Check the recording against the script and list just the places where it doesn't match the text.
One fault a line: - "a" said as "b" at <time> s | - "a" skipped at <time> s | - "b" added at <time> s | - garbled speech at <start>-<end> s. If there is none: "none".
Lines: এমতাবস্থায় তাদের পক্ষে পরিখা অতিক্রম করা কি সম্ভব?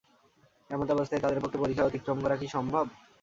none